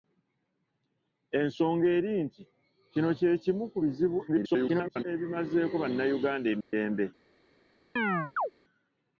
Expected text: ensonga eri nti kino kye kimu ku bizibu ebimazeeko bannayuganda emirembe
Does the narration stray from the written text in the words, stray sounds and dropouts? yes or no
yes